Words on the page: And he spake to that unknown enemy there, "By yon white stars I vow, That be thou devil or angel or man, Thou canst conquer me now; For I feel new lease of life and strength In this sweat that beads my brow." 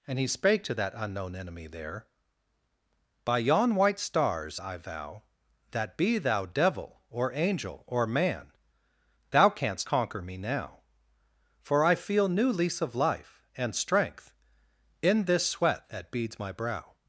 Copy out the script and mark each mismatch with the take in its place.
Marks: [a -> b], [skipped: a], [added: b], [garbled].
And he spake to that unknown enemy there, "By yon white stars I vow, That be thou devil or angel or man, Thou canst conquer me now; For I feel new lease of life and strength In this sweat that beads my brow."